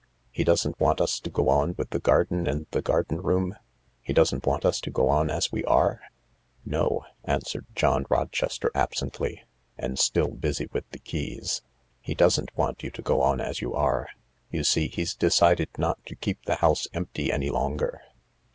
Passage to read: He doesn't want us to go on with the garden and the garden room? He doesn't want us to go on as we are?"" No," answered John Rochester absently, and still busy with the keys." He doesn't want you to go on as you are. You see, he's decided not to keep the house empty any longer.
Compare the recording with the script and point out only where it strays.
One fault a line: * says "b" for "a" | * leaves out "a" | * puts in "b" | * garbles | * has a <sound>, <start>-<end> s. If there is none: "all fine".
all fine